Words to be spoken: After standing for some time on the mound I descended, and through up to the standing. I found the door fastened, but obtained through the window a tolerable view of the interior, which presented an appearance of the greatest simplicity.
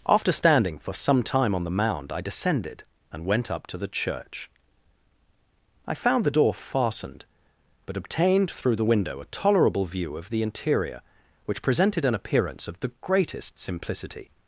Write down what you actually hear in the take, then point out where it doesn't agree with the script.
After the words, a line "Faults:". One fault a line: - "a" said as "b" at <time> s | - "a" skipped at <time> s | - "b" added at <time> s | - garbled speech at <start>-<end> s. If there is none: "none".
After standing for some time on the mound I descended, and went up to the church. I found the door fastened, but obtained through the window a tolerable view of the interior, which presented an appearance of the greatest simplicity.
Faults:
- "through" said as "went" at 3.2 s
- "standing" said as "church" at 3.9 s